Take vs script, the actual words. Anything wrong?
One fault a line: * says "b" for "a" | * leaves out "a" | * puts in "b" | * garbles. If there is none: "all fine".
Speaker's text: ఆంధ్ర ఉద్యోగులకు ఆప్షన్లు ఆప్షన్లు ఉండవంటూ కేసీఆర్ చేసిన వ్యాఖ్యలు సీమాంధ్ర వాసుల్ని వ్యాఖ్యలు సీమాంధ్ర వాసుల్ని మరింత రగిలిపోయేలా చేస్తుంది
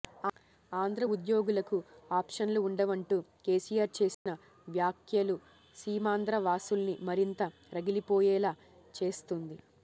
* leaves out "ఆప్షన్లు"
* leaves out "వ్యాఖ్యలు సీమాంధ్ర వాసుల్ని"